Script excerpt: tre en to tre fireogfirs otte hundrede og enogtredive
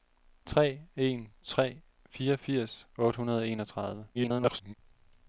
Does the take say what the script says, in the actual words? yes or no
no